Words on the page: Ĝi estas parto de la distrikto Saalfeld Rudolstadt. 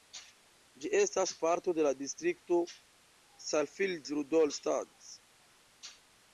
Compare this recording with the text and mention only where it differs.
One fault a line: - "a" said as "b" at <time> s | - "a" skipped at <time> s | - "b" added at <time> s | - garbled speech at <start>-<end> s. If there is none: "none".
none